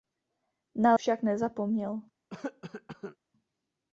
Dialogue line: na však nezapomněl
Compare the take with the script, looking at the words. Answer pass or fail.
pass